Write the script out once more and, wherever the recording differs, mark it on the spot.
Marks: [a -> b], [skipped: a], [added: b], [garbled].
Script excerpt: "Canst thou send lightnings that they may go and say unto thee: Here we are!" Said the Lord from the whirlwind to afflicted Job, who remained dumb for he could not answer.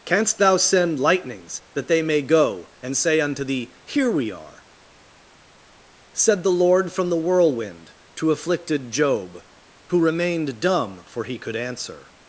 "Canst thou send lightnings that they may go and say unto thee: Here we are!" Said the Lord from the whirlwind to afflicted Job, who remained dumb for he could [skipped: not] answer.